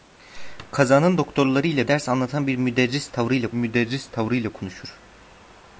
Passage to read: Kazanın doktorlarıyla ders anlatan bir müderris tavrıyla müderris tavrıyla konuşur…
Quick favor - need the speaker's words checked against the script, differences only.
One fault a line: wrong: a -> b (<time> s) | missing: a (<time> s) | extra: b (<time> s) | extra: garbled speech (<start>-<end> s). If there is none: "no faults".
no faults